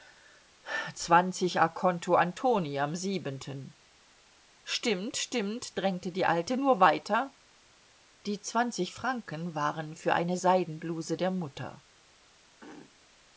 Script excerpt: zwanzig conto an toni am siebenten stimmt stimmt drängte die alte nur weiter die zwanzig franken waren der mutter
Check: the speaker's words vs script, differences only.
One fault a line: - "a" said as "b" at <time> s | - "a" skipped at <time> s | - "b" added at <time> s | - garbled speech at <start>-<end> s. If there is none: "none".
- "für eine seidenbluse" added at 10.0 s